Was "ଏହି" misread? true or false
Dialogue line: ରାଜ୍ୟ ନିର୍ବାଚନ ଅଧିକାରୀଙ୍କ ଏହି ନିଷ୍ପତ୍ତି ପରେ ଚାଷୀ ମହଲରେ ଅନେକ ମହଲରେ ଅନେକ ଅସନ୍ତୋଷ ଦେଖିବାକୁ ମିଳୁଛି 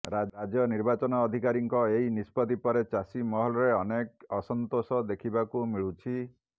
false